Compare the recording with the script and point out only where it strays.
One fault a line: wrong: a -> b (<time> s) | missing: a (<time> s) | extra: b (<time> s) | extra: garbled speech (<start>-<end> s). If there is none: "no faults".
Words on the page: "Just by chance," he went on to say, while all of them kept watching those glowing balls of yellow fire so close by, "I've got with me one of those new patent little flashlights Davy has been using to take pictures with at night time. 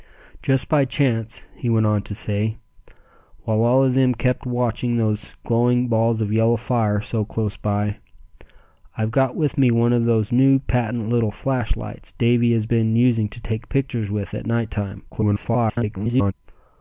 extra: garbled speech (15.1-16.3 s)